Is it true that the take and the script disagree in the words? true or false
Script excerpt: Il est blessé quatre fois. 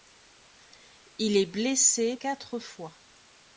false